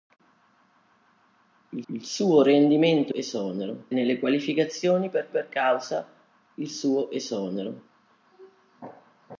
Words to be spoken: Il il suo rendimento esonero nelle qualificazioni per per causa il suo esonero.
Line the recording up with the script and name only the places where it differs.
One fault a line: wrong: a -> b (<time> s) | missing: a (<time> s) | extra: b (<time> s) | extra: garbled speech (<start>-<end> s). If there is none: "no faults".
no faults